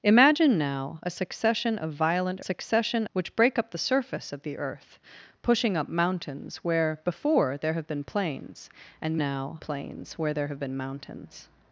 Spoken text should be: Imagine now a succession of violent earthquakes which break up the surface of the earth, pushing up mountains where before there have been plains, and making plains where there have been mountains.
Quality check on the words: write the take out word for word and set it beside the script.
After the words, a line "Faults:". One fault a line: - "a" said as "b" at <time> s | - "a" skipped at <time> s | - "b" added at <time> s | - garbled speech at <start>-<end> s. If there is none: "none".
Imagine now a succession of violent succession which break up the surface of the earth, pushing up mountains where before there have been plains, and now plains where there have been mountains.
Faults:
- "earthquakes" said as "succession" at 2.4 s
- "making" said as "now" at 9.2 s